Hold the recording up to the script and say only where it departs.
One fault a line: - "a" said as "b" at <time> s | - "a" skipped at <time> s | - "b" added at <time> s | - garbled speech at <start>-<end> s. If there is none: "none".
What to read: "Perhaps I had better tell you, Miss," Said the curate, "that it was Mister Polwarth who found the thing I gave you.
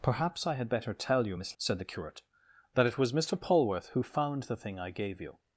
none